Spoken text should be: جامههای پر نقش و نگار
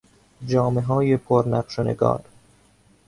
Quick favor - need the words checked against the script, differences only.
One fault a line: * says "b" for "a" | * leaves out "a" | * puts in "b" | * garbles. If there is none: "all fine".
all fine